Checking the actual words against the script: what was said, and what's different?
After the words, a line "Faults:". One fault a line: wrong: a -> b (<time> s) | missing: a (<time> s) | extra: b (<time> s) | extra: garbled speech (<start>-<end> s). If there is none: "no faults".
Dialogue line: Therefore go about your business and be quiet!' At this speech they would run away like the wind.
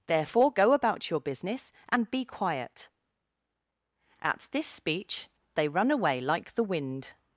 Therefore go about your business and be quiet!' At this speech they run away like the wind.
Faults:
missing: would (5.7 s)